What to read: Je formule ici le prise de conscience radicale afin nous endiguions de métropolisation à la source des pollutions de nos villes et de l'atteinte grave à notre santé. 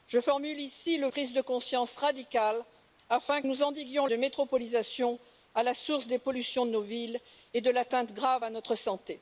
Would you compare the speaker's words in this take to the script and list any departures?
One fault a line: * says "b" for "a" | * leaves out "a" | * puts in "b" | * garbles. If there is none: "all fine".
all fine